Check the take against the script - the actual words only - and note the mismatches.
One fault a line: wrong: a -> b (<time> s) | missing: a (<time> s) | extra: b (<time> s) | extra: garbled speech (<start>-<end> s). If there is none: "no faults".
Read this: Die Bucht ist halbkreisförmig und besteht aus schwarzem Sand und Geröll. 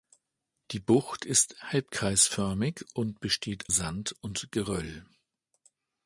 missing: aus schwarzem (3.7 s)